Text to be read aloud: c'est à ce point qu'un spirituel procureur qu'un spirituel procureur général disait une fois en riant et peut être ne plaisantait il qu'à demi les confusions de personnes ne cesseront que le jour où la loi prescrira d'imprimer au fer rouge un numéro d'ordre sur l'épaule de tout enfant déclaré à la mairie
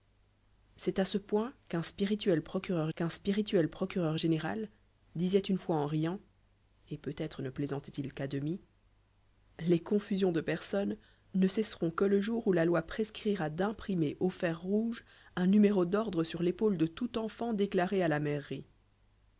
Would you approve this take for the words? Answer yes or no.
yes